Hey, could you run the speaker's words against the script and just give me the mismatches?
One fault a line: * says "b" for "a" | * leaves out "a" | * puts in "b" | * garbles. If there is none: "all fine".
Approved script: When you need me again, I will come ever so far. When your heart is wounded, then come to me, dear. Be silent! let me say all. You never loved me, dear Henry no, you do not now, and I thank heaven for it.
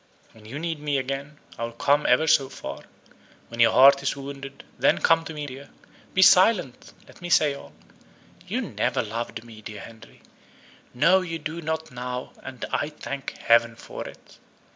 all fine